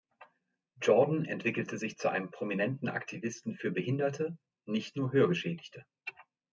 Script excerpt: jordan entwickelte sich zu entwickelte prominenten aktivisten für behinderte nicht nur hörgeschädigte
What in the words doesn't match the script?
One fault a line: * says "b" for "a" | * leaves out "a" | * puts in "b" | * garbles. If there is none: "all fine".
* says "einem" for "entwickelte"